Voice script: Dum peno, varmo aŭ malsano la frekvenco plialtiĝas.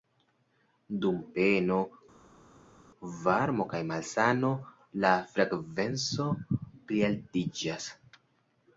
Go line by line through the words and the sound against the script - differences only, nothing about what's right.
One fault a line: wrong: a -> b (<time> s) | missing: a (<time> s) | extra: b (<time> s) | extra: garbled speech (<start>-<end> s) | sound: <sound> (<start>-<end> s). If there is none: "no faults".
wrong: aŭ -> kaj (3.7 s)